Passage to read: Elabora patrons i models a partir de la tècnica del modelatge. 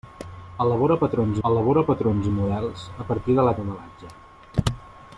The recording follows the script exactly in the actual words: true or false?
false